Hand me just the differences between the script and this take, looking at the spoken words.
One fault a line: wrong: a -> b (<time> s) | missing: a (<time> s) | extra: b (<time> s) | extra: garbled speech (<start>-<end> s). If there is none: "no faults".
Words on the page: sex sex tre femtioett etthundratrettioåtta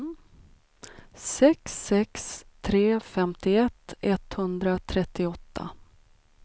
no faults